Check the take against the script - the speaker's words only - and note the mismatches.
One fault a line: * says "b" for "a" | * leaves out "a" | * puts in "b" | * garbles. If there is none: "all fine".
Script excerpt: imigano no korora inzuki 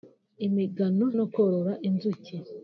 all fine